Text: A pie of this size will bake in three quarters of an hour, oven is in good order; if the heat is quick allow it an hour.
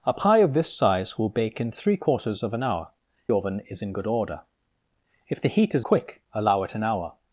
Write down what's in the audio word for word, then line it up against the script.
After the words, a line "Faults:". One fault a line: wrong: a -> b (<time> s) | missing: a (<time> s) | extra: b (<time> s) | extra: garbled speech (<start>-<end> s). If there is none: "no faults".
A pie of this size will bake in three quarters of an hour, oven is in good order; if the heat is quick allow it an hour.
Faults:
no faults